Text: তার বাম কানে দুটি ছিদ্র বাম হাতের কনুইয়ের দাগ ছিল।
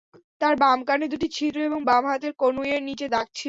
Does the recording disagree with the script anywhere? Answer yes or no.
yes